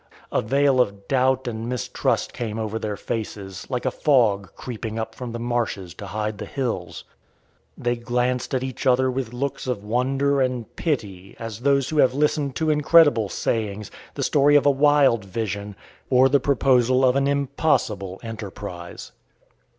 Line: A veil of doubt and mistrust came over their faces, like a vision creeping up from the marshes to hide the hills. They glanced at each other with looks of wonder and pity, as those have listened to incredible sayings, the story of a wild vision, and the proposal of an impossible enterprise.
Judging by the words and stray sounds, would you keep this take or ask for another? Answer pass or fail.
fail